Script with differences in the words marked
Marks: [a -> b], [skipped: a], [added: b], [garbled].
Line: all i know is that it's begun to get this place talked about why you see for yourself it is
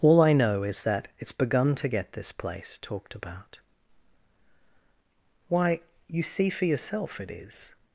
all i know is that it's begun to get this place talked about why you see for yourself it is